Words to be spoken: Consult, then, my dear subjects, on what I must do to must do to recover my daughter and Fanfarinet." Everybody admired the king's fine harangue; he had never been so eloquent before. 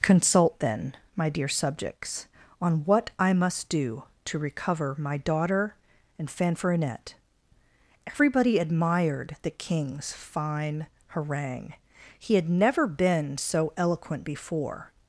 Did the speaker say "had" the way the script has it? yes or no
yes